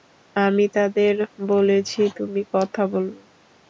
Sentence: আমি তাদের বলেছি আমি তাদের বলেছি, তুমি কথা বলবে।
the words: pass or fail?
fail